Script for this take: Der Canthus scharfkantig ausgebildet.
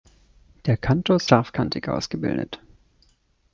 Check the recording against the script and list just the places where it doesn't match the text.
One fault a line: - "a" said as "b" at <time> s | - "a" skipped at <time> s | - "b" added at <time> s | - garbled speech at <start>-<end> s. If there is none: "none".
none